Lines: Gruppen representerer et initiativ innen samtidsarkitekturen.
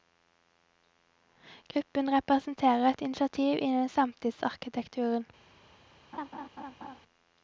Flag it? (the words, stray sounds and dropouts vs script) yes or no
yes